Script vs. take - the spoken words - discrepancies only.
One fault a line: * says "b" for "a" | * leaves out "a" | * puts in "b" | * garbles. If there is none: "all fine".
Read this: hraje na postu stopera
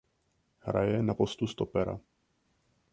all fine